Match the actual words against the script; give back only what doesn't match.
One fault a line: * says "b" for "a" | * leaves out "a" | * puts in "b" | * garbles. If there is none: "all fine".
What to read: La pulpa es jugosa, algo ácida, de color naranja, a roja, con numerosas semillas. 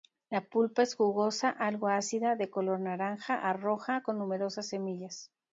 all fine